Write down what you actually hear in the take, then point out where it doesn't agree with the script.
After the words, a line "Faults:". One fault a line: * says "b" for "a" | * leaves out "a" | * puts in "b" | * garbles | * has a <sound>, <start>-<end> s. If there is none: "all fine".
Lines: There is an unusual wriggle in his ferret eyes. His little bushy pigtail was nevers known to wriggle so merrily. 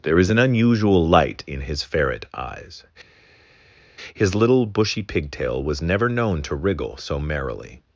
There is an unusual light in his ferret eyes. His little bushy pigtail was never known to wriggle so merrily.
Faults:
* says "light" for "wriggle"
* says "never" for "nevers"